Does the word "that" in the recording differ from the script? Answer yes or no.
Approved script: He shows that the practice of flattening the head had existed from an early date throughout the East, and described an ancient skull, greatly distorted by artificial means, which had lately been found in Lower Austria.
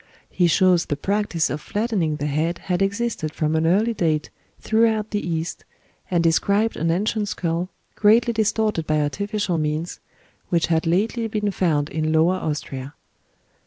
yes